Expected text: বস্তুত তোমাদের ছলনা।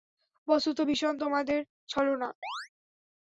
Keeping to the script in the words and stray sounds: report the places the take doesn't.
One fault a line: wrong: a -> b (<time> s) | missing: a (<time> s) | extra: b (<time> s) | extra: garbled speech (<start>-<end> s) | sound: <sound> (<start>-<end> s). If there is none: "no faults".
extra: ভীষণ (0.9 s)
sound: chirp (2.4-2.7 s)